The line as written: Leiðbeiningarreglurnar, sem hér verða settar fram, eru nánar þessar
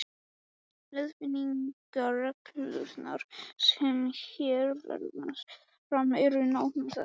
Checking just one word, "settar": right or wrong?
wrong